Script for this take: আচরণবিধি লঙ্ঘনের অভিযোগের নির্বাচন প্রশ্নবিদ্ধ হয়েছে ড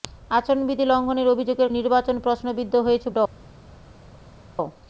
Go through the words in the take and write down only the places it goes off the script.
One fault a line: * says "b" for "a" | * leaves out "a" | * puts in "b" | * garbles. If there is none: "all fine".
all fine